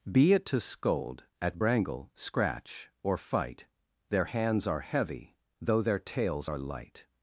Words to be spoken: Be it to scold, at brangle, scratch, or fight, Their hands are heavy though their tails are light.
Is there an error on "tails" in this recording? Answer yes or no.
no